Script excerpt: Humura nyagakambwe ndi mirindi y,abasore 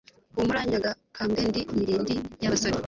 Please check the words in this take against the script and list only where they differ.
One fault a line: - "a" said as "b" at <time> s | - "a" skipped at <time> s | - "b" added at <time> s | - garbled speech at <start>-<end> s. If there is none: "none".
none